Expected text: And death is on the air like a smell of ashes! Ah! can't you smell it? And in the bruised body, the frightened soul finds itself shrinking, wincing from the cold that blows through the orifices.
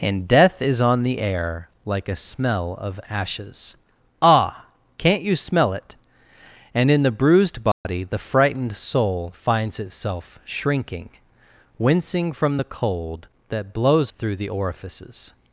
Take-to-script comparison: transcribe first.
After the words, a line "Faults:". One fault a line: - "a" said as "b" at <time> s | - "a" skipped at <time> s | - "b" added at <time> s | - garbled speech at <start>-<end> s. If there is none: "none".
And death is on the air like a smell of ashes! Ah! can't you smell it? And in the bruised body, the frightened soul finds itself shrinking, wincing from the cold that blows through the orifices.
Faults:
none